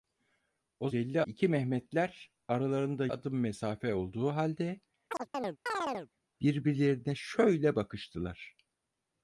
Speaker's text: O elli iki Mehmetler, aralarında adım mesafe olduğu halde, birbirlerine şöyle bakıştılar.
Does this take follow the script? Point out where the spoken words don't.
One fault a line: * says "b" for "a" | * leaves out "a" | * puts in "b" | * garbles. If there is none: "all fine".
all fine